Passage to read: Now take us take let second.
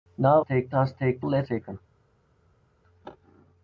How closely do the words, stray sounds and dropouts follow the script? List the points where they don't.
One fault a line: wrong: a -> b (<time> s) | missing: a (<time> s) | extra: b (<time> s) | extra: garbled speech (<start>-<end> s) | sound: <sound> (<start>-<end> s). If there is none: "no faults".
no faults